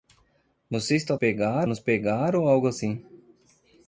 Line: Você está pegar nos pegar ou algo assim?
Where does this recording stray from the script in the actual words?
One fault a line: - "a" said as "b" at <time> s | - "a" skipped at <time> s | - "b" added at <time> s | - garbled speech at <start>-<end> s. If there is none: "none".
none